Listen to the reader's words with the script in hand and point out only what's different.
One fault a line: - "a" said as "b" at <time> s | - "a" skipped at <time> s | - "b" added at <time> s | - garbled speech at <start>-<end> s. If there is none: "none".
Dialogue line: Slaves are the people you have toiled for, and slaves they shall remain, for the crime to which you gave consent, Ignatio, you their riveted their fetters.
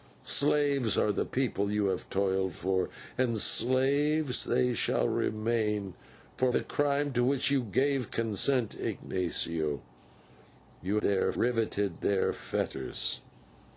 none